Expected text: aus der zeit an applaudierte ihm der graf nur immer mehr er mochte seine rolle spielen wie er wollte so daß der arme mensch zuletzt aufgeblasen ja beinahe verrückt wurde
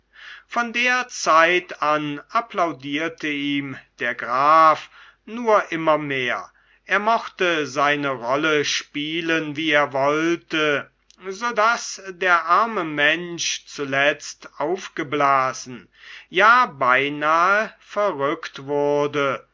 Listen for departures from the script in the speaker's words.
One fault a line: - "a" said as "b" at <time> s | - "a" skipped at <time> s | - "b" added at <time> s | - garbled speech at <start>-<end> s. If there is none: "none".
- "aus" said as "von" at 0.5 s